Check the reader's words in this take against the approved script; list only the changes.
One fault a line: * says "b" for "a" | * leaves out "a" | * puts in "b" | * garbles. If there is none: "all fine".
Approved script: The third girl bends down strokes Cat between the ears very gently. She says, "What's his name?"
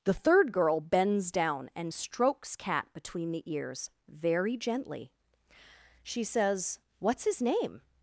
* puts in "and"